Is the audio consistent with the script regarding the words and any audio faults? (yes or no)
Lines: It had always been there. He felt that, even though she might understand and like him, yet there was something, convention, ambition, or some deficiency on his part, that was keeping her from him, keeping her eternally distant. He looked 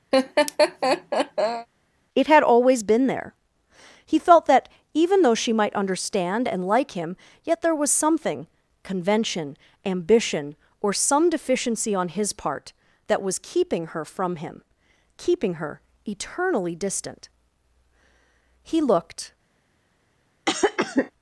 no